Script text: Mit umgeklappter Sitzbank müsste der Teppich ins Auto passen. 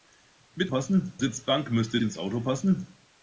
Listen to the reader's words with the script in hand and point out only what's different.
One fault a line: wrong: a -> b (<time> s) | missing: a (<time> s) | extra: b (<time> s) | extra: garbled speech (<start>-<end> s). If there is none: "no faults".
wrong: umgeklappter -> passen (0.7 s)
missing: der Teppich (2.0 s)